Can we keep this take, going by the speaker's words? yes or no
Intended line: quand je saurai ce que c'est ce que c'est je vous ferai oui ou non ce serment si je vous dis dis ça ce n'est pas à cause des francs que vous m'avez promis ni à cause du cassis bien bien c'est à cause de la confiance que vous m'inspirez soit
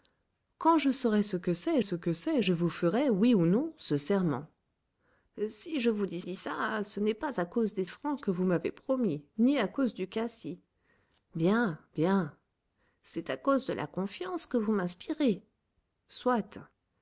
yes